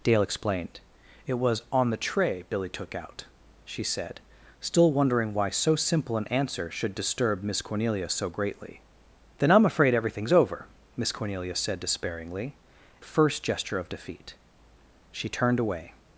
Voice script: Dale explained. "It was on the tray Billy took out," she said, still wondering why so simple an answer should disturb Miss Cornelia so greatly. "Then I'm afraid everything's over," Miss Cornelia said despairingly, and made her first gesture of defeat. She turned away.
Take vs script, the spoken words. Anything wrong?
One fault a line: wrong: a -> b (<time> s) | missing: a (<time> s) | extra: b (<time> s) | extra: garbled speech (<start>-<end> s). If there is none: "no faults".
missing: and made her (12.6 s)